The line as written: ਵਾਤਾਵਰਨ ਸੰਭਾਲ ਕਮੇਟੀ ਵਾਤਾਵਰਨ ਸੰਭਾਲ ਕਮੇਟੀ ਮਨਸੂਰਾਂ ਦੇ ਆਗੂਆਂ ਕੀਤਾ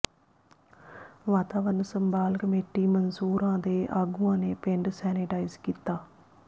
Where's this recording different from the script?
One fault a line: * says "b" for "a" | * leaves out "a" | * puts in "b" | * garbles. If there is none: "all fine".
* says "ਮਨਸੂਰਾਂ ਦੇ ਆਗੂਆਂ ਨੇ ਪਿੰਡ ਸੈਨੇਟਾਈਜ਼" for "ਵਾਤਾਵਰਨ ਸੰਭਾਲ ਕਮੇਟੀ ਮਨਸੂਰਾਂ ਦੇ ਆਗੂਆਂ"